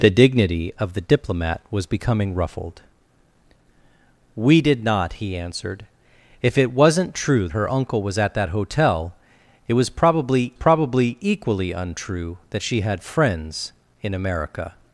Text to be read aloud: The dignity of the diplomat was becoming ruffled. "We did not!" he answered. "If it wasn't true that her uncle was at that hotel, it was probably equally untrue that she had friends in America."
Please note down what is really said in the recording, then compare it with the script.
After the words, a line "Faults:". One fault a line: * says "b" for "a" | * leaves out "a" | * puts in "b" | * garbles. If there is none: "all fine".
The dignity of the diplomat was becoming ruffled. "We did not!" he answered. "If it wasn't true her uncle was at that hotel, it was probably probably equally untrue that she had friends in America."
Faults:
* leaves out "that"
* puts in "probably"